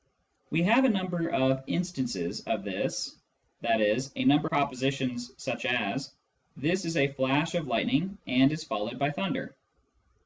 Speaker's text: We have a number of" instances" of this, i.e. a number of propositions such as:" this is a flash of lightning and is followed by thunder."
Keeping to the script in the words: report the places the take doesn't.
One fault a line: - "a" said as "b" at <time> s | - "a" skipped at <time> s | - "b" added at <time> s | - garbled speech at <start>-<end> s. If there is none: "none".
- "of" skipped at 4.5 s